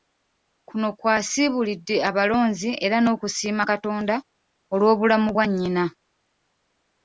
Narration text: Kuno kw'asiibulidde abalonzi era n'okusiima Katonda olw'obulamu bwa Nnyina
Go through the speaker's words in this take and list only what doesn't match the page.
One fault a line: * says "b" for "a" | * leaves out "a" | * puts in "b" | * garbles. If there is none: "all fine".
all fine